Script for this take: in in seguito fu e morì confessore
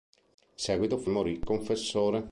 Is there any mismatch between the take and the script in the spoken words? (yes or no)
no